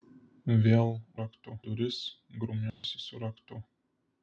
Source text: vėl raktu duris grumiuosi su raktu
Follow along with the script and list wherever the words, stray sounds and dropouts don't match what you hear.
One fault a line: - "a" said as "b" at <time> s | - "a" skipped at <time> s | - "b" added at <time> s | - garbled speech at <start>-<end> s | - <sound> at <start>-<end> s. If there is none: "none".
- dropout at 2.7-2.8 s